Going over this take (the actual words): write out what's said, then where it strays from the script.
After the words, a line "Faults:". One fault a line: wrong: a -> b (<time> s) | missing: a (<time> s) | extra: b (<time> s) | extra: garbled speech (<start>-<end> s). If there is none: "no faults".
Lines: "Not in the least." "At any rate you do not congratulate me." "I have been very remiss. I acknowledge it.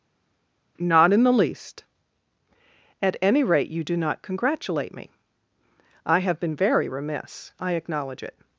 "Not in the least." "At any rate you do not congratulate me." "I have been very remiss. I acknowledge it.
Faults:
no faults